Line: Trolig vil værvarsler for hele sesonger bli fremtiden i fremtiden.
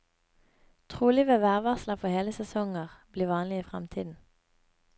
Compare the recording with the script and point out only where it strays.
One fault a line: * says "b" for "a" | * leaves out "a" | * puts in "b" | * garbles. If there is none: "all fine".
* says "vanlig" for "fremtiden"